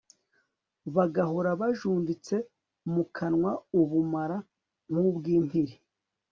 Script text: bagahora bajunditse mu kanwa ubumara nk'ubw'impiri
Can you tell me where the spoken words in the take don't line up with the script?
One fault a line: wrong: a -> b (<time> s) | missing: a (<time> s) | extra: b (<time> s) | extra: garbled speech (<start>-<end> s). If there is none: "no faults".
no faults